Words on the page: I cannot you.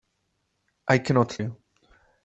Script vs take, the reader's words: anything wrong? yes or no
no